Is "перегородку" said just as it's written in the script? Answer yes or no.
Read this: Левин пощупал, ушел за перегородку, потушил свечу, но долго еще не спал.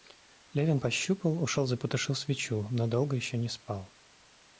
no